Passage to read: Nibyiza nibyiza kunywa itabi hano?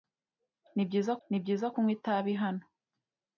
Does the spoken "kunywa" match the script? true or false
true